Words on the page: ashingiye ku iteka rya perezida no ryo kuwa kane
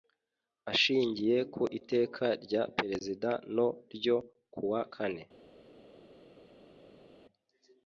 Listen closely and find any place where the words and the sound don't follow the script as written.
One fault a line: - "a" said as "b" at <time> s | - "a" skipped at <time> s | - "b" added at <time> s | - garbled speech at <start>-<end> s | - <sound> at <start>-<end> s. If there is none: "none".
none